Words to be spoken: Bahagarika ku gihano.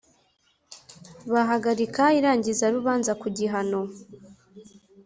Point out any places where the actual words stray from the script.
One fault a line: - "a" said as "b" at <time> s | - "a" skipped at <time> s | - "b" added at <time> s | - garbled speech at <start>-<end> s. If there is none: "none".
- "irangizarubanza" added at 2.2 s